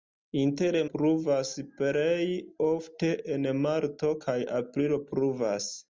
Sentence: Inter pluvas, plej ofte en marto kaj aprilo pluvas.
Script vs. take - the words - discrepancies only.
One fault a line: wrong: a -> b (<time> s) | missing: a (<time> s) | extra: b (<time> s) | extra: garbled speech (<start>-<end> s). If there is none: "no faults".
no faults